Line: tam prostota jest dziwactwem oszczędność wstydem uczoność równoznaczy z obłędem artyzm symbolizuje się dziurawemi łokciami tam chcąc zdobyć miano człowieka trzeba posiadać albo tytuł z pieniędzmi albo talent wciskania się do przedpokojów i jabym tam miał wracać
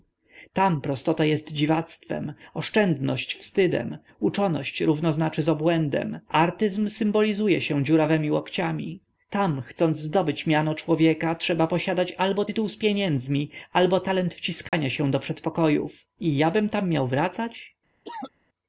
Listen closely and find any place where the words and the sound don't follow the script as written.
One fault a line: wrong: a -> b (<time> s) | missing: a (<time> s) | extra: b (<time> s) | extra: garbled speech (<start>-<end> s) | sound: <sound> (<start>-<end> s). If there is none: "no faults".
sound: dropout (14.7-14.7 s)
sound: cough (18.1-18.3 s)